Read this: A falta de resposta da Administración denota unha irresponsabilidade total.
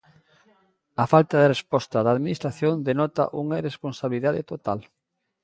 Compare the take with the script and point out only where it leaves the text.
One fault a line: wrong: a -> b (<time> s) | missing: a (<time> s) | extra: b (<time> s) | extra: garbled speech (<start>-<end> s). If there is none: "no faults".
no faults